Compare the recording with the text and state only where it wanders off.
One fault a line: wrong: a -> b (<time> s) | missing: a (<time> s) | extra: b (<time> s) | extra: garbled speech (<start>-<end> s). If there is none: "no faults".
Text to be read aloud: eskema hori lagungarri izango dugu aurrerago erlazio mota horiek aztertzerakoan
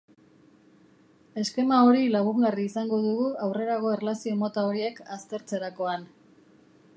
no faults